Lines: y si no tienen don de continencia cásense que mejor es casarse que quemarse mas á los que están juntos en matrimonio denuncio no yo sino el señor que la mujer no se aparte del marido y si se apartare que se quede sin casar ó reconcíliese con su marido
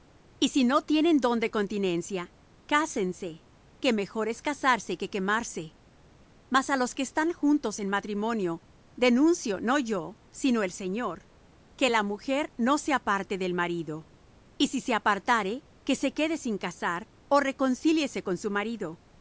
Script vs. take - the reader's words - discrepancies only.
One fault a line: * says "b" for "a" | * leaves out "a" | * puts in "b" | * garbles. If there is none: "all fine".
all fine